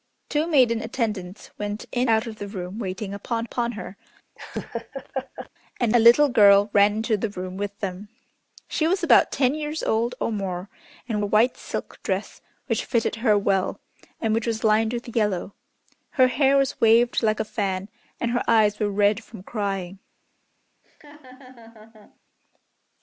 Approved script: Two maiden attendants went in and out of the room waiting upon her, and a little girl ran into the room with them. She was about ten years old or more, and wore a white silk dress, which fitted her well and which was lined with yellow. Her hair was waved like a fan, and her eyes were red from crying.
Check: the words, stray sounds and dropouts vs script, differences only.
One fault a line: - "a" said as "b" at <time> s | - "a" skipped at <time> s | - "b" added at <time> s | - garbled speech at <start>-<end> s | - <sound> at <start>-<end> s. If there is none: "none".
- "and" skipped at 2.1 s
- "upon" added at 3.4 s
- laugh at 4.4-5.5 s
- "wore" skipped at 11.2 s
- laugh at 20.8-22.2 s